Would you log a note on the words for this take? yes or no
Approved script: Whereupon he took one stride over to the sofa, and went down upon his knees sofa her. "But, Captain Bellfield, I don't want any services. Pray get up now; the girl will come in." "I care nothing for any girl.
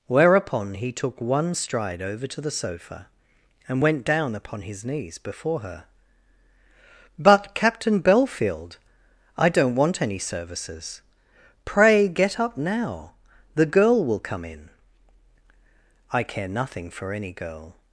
yes